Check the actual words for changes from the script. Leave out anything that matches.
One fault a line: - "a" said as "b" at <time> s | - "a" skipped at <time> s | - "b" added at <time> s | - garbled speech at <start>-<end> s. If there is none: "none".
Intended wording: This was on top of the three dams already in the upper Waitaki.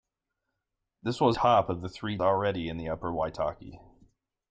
- "on" skipped at 1.4 s
- "dams" skipped at 2.2 s